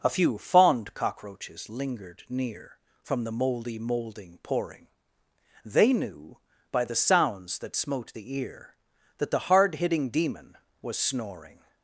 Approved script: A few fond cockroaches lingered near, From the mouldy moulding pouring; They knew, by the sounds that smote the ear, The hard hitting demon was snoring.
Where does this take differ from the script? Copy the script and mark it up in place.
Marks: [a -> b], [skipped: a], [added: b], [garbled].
A few fond cockroaches lingered near, From the mouldy moulding pouring; They knew, by the sounds that smote the ear, [added: That] The hard hitting demon was snoring.